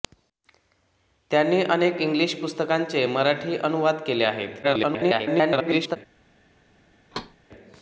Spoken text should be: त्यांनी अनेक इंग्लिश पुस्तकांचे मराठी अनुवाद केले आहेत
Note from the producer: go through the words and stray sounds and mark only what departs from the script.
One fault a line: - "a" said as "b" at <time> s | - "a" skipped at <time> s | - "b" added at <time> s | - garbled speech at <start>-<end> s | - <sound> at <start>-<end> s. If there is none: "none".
- garbled speech at 4.6-6.0 s
- thud at 7.1-7.4 s